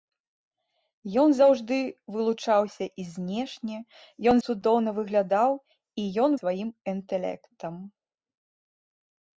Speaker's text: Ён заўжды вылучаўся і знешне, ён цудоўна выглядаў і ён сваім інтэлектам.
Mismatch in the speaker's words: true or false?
false